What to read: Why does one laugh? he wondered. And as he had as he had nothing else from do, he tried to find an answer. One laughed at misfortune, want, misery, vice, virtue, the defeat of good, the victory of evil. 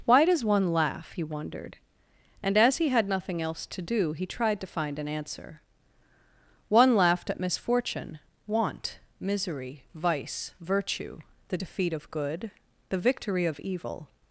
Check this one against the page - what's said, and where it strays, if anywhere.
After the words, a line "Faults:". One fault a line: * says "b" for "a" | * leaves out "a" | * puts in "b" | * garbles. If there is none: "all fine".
Why does one laugh? he wondered. And as he had nothing else to do, he tried to find an answer. One laughed at misfortune, want, misery, vice, virtue, the defeat of good, the victory of evil.
Faults:
* leaves out "as he had"
* says "to" for "from"